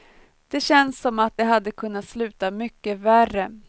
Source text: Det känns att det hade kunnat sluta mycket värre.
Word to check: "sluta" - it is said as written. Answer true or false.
true